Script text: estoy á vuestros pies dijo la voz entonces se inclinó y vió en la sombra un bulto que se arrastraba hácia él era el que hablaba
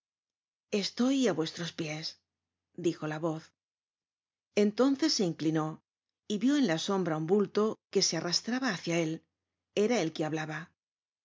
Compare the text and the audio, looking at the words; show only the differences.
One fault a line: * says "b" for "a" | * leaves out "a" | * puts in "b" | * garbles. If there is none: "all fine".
all fine